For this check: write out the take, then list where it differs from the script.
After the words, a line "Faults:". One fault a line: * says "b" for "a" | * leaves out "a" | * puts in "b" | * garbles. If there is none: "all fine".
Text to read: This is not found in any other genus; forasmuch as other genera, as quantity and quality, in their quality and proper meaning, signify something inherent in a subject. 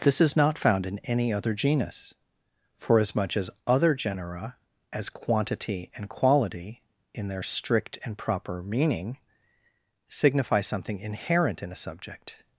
This is not found in any other genus; forasmuch as other genera, as quantity and quality, in their strict and proper meaning, signify something inherent in a subject.
Faults:
* says "strict" for "quality"